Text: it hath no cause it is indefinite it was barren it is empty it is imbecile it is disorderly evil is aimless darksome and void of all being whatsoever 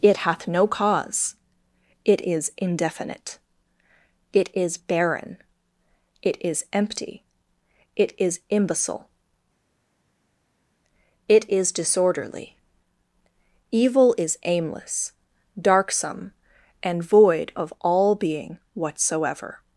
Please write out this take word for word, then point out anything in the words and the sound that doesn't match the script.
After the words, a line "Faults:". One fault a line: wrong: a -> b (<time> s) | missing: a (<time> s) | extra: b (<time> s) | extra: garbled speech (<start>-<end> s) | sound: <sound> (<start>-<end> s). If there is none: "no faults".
it hath no cause it is indefinite it is barren it is empty it is imbecile it is disorderly evil is aimless darksome and void of all being whatsoever
Faults:
wrong: was -> is (4.5 s)